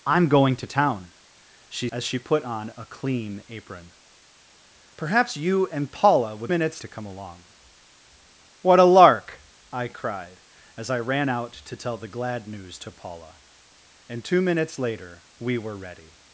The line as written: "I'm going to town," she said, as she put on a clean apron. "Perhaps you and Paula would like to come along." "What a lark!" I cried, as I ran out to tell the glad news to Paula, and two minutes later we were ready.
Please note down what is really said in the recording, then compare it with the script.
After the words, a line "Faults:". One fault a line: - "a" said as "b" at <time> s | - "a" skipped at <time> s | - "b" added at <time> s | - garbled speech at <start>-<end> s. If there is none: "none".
"I'm going to town," she as she put on a clean apron. "Perhaps you and Paula would minutes to come along." "What a lark!" I cried, as I ran out to tell the glad news to Paula, and two minutes later we were ready.
Faults:
- "said" skipped at 1.9 s
- "like" said as "minutes" at 6.5 s